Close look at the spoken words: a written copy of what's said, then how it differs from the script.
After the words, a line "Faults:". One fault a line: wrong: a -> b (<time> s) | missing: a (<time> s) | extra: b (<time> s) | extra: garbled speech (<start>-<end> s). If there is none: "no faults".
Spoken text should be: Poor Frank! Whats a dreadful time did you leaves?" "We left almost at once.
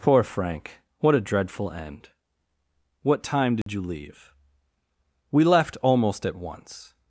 Poor Frank! What a dreadful end." "What time did you leave?" "We left almost at once.
Faults:
wrong: Whats -> What (1.0 s)
extra: end What (1.7 s)
wrong: leaves -> leave (3.8 s)